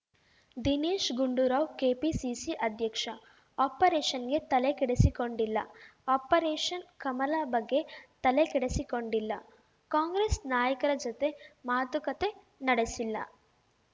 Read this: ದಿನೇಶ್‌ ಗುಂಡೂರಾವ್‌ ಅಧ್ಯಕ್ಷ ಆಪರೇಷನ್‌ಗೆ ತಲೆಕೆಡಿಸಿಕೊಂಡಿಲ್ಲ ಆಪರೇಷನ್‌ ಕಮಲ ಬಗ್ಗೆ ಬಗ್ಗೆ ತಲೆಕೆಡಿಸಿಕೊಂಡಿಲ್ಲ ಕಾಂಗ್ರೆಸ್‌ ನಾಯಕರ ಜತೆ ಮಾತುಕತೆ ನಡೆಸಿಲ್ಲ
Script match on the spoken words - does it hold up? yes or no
no